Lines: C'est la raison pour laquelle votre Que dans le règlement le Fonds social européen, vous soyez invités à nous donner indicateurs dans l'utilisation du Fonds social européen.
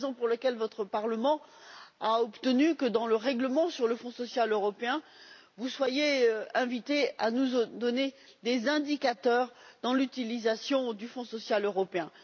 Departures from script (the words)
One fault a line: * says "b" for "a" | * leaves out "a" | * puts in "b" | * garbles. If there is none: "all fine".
* puts in "Parlement a obtenu"
* puts in "sur"
* puts in "des"